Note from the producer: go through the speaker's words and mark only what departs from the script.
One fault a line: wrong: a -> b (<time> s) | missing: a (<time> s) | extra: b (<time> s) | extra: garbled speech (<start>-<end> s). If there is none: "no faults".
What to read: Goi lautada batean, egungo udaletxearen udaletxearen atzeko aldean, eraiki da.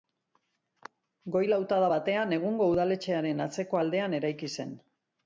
missing: udaletxearen (3.4 s)
wrong: da -> zen (4.6 s)